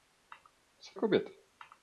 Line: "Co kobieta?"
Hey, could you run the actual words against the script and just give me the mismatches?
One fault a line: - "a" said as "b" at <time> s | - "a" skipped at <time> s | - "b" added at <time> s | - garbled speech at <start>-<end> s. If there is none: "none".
none